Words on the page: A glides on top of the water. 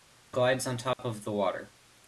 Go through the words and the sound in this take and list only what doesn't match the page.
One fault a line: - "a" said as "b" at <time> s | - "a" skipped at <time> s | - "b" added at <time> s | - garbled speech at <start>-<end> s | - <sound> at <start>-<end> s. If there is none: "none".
- dropout at 0.9-1.0 s